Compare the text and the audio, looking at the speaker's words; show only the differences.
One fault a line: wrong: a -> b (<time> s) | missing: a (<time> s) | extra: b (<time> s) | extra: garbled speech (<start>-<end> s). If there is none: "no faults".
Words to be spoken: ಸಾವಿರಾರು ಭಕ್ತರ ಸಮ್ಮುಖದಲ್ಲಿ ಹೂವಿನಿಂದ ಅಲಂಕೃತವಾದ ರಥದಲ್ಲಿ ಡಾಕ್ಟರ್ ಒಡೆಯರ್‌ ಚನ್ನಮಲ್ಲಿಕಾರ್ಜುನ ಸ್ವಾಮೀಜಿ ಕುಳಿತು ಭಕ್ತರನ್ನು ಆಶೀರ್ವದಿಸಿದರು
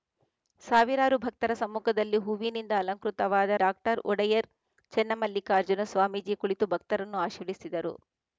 missing: ರಥದಲ್ಲಿ (3.6 s)